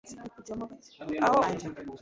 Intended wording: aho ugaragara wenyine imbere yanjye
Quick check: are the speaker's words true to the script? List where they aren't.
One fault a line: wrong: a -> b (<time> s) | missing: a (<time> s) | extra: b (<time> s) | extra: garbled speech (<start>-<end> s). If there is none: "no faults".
missing: ugaragara wenyine imbere (1.4 s)